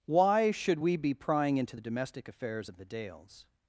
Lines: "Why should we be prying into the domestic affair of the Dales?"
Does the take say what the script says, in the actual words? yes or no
no